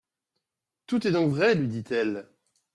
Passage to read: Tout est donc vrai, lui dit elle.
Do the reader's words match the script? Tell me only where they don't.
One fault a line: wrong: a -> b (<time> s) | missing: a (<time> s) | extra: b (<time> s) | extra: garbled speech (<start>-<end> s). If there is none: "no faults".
no faults